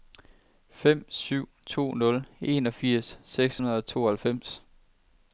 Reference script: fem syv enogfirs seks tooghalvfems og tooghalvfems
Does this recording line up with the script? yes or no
no